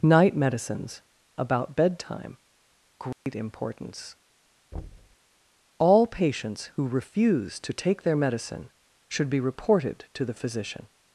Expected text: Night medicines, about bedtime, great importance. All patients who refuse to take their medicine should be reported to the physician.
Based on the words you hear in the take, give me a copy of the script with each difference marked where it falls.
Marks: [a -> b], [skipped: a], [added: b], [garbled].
Night medicines, about bedtime, great importance. All patients who refuse to take their medicine should be reported to the physician.